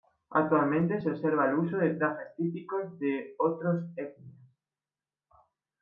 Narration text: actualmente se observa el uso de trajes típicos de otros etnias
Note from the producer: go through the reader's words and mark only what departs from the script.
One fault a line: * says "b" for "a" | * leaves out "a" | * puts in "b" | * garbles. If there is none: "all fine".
all fine